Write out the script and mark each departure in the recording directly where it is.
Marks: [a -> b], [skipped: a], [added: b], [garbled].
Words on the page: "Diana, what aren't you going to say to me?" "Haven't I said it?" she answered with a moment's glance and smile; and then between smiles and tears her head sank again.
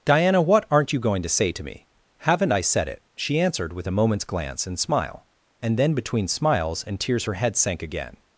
"Diana, what aren't you going to say to me?" "Haven't I said it?" she answered with a moment's glance and smile; and then between smiles and tears her head sank again.